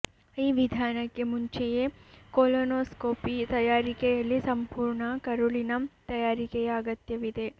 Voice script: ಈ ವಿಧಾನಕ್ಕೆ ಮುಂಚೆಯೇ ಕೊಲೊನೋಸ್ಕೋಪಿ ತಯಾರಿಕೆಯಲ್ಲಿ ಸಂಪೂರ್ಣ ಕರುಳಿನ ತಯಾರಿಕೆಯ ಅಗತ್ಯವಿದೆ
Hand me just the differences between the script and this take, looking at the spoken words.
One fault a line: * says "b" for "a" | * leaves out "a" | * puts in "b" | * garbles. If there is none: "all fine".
all fine